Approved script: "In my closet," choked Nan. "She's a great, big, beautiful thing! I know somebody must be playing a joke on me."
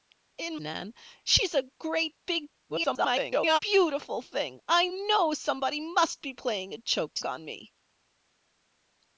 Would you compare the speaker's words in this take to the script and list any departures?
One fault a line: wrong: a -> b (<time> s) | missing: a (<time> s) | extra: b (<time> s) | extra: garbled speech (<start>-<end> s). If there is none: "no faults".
missing: my closet choked (0.6 s)
extra: garbled speech (2.7-3.6 s)
wrong: joke -> choked (6.8 s)